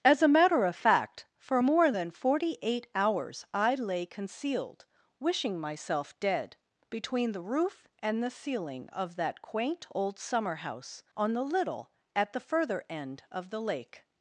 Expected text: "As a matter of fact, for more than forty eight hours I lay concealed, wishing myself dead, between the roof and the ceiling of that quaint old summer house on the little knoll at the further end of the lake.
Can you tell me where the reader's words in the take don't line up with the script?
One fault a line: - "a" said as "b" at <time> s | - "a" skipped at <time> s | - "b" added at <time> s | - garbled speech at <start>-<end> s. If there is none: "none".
- "knoll" skipped at 11.9 s